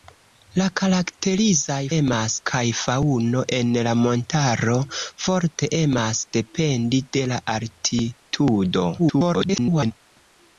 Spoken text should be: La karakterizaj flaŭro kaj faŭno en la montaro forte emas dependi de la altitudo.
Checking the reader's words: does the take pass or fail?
fail